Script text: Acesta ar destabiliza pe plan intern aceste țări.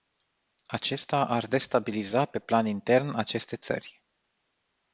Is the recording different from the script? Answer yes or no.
no